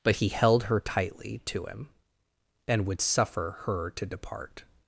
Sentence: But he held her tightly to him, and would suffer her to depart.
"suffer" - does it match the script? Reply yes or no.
yes